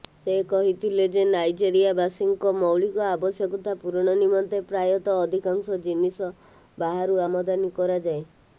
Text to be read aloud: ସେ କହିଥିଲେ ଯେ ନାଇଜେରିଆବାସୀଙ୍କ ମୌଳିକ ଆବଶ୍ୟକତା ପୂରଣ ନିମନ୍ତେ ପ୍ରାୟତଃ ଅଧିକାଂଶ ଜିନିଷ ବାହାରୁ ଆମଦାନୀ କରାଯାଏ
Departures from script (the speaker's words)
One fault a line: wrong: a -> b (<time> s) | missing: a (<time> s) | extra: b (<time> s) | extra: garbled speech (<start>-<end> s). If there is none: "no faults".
no faults